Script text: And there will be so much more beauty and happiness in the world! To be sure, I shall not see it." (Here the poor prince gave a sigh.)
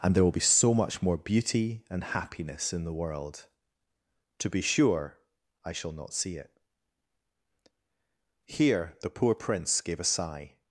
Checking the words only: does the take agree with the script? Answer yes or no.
yes